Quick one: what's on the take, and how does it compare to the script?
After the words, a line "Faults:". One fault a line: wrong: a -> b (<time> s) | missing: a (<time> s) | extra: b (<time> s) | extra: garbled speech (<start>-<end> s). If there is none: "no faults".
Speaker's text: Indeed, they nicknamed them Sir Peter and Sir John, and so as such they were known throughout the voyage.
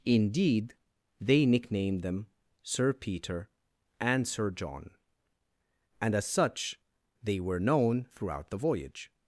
Indeed, they nicknamed them Sir Peter and Sir John, and as such they were known throughout the voyage.
Faults:
missing: so (6.1 s)